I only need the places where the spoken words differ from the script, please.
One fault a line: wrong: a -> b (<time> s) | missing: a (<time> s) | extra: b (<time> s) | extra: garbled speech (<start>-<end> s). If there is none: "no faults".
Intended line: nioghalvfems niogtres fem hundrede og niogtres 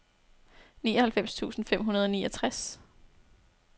wrong: niogtres -> tusind (1.4 s)